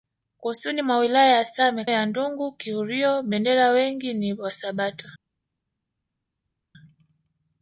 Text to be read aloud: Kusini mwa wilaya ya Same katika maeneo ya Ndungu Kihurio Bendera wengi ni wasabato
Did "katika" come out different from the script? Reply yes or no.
yes